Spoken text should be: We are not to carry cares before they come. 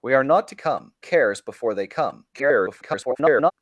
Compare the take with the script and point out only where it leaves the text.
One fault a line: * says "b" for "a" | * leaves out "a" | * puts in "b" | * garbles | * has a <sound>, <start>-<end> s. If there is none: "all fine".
* says "come" for "carry"
* garbles